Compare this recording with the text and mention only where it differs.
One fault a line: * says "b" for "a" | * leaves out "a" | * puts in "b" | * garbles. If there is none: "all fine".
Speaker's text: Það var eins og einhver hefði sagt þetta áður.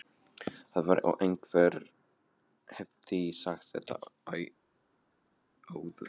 * leaves out "eins"